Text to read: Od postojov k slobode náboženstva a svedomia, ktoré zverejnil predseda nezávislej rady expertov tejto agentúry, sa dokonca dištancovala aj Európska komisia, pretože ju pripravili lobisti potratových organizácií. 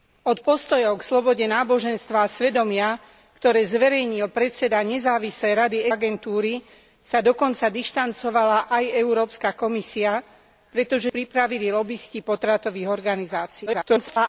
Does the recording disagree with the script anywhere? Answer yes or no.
yes